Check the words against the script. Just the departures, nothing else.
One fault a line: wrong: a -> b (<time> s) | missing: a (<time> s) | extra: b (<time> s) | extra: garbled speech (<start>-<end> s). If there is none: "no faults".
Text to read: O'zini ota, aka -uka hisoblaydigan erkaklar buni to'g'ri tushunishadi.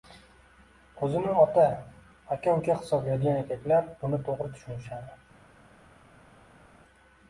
no faults